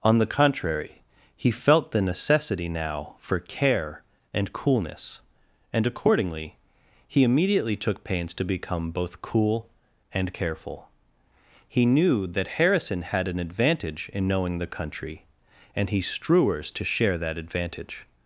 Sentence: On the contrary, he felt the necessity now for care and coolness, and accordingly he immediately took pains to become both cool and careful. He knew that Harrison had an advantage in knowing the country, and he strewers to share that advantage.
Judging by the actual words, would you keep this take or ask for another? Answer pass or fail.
pass